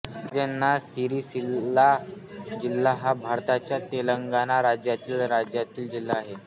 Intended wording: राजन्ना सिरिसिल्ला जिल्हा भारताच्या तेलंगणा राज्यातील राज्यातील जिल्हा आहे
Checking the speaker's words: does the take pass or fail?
fail